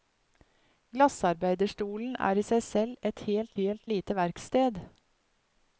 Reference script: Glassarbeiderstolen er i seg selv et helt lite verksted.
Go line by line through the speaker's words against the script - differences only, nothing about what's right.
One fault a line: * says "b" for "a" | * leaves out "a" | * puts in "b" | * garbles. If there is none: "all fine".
* puts in "helt"